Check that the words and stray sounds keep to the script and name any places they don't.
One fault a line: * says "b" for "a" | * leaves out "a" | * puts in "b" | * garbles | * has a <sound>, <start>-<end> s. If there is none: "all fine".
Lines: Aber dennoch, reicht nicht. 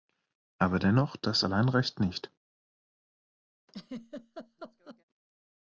* puts in "das allein"
* has a laugh, 3.7-5.0 s